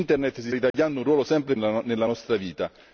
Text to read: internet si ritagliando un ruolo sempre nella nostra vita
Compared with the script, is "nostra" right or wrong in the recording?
right